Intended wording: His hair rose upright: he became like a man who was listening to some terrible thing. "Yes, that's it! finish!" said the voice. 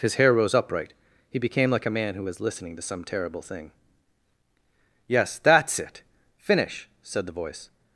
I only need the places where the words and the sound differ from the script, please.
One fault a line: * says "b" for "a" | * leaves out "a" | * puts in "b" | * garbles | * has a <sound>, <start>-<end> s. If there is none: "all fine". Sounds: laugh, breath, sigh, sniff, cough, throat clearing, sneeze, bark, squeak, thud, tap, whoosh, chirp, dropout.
all fine